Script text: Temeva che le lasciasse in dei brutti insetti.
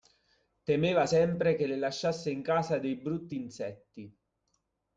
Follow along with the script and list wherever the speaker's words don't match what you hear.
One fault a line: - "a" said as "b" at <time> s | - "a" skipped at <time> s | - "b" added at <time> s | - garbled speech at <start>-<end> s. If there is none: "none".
- "sempre" added at 1.0 s
- "casa" added at 2.4 s